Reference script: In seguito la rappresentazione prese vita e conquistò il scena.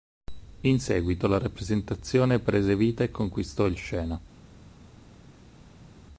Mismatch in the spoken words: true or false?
false